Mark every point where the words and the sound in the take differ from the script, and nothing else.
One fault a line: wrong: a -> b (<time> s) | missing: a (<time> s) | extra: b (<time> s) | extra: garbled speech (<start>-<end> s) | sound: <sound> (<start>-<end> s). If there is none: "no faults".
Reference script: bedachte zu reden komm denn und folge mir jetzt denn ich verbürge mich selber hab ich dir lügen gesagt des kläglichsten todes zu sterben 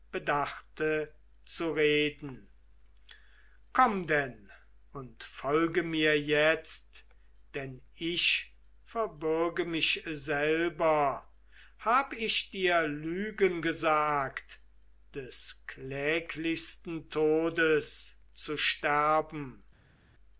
no faults